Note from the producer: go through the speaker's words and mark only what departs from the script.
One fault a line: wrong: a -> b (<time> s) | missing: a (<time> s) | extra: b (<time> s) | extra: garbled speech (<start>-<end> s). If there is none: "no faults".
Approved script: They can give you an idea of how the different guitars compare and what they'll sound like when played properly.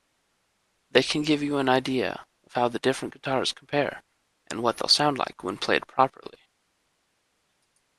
no faults